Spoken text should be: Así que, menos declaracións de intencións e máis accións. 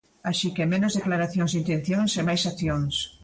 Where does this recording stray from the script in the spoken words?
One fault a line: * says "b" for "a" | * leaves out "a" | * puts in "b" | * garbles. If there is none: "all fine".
all fine